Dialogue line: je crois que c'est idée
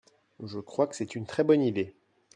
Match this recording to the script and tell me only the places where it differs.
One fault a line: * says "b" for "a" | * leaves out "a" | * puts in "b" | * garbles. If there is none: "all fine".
* puts in "une très bonne"